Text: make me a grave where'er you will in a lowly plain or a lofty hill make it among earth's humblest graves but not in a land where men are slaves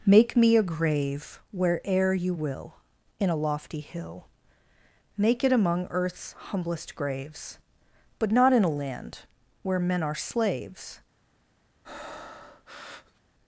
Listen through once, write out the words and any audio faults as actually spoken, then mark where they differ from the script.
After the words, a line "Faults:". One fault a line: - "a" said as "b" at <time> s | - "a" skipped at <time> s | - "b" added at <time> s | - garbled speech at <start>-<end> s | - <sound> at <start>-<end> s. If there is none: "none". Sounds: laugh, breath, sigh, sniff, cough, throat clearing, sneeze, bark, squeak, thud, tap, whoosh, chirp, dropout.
make me a grave where'er you will in a lofty hill make it among earth's humblest graves but not in a land where men are slaves
Faults:
- "lowly plain or a" skipped at 3.4 s
- breath at 11.8-13.2 s